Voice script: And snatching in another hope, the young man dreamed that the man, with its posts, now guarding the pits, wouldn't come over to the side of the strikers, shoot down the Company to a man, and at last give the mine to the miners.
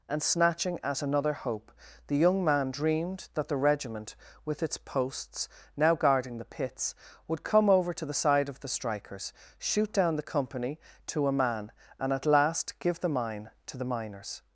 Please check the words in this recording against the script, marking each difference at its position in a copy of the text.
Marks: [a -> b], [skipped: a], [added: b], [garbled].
And snatching [in -> at] another hope, the young man dreamed that the [man, -> regiment] with its posts, now guarding the pits, [wouldn't -> would] come over to the side of the strikers, shoot down the Company to a man, and at last give the mine to the miners.